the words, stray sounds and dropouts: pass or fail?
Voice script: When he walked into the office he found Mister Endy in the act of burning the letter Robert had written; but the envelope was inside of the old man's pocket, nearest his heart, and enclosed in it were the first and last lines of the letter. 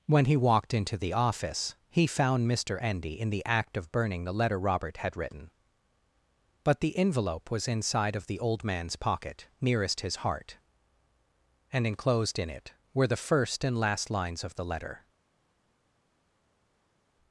pass